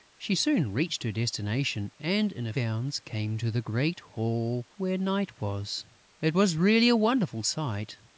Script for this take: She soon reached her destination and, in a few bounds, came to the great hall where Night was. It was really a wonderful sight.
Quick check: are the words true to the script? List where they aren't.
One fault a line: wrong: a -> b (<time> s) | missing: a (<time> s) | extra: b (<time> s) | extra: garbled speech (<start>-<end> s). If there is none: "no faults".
missing: few (2.5 s)